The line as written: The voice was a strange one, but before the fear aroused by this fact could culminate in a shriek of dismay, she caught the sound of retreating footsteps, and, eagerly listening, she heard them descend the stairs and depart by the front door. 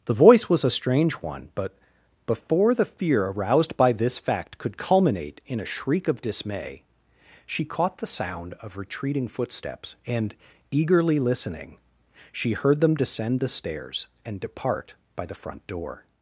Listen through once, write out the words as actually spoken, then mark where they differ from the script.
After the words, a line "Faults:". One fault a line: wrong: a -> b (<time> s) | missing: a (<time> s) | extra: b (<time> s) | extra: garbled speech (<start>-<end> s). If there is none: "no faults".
The voice was a strange one, but before the fear aroused by this fact could culminate in a shriek of dismay, she caught the sound of retreating footsteps, and, eagerly listening, she heard them descend the stairs and depart by the front door.
Faults:
no faults